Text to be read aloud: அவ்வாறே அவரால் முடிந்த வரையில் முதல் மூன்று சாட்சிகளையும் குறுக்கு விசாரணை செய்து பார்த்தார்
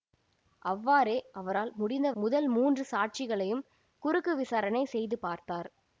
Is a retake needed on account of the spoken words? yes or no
yes